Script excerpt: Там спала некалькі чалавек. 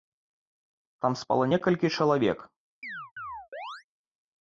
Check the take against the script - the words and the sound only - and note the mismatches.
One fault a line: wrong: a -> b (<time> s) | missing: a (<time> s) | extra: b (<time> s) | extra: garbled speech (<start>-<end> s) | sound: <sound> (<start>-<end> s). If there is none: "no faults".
sound: chirp (2.8-3.8 s)